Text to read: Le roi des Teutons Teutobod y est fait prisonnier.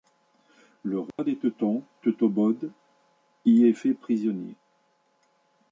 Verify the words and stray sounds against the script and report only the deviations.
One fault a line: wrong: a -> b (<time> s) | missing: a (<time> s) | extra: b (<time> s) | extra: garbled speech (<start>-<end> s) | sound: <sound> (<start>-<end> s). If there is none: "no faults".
sound: dropout (1.1-1.2 s)